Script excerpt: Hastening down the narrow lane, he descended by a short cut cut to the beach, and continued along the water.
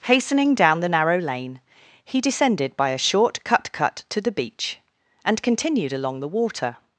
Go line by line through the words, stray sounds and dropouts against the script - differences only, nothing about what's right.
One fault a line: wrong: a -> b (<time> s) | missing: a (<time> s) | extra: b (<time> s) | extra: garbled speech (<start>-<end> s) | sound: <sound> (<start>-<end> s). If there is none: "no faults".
no faults